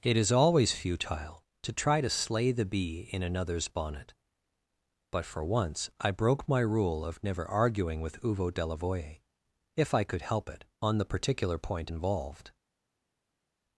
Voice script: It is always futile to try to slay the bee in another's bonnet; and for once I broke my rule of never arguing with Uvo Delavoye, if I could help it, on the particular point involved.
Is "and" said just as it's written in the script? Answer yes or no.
no